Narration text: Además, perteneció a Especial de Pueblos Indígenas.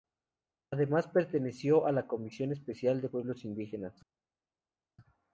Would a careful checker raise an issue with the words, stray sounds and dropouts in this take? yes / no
yes